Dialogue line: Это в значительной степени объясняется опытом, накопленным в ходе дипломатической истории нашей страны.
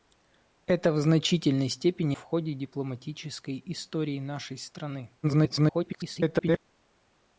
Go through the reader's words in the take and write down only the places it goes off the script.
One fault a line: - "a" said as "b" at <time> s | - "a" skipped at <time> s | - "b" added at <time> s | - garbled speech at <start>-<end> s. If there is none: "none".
- "объясняется опытом накопленным" skipped at 2.2 s
- garbled speech at 5.2-6.6 s